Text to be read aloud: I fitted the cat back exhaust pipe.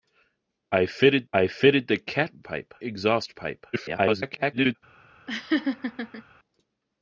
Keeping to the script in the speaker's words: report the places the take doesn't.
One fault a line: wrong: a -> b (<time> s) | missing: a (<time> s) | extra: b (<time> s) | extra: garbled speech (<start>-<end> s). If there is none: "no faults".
extra: I fitted (1.3 s)
wrong: back -> pipe (2.4 s)
extra: garbled speech (3.7-4.8 s)